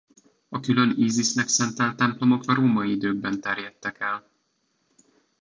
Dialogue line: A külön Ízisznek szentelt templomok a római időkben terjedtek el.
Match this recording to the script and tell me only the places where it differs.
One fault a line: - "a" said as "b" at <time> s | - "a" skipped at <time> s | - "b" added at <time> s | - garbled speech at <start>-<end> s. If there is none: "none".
none